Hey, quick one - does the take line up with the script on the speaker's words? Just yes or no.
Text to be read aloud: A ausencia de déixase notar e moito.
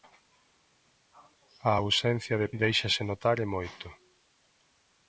yes